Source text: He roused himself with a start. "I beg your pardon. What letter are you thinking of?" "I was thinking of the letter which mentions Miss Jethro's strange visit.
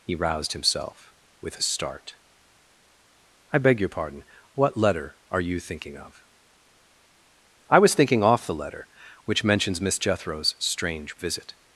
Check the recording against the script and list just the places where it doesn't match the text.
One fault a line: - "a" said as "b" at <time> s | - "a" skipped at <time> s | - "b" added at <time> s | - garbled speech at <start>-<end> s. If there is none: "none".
- "of" said as "off" at 8.2 s